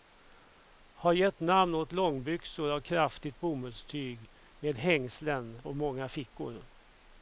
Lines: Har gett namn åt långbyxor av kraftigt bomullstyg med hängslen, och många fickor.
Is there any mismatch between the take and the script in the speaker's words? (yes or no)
no